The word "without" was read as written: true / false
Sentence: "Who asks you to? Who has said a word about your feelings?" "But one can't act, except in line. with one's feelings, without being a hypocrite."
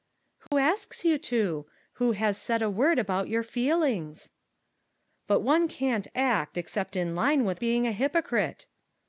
false